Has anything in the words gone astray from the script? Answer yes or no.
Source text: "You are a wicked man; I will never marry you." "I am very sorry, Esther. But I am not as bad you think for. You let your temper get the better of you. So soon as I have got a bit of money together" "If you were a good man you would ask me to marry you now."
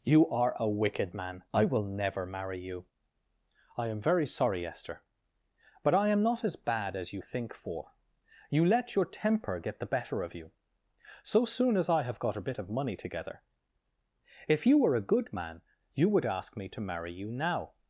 yes